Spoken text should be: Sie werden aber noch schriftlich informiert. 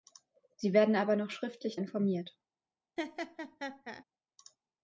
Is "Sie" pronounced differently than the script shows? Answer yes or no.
no